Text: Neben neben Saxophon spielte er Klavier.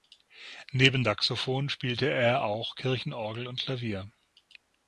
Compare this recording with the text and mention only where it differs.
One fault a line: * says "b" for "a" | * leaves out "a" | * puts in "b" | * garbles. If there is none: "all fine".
* leaves out "neben"
* puts in "auch Kirchenorgel und"